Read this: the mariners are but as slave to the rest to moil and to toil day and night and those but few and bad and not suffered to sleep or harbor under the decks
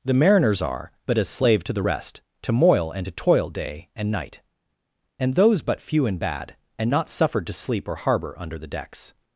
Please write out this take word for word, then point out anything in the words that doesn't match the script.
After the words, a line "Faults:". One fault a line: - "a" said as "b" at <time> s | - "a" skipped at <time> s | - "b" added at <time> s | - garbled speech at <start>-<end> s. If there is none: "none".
the mariners are but as slave to the rest to moil and to toil day and night and those but few and bad and not suffered to sleep or harbor under the decks
Faults:
none